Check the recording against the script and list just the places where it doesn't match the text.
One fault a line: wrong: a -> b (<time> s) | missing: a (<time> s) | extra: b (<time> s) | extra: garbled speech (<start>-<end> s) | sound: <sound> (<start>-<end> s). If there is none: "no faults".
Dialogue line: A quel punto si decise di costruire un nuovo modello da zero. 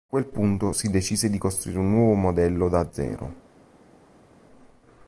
no faults